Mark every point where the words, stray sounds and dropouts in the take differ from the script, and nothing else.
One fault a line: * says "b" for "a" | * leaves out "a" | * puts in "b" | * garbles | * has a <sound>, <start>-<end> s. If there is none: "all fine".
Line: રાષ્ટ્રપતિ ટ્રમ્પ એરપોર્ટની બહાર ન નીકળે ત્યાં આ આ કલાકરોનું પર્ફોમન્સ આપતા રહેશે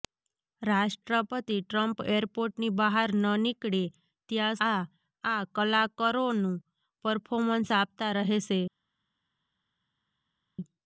all fine